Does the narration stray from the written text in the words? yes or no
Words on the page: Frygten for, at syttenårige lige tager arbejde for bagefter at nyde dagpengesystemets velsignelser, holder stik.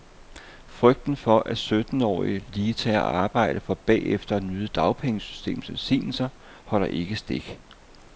yes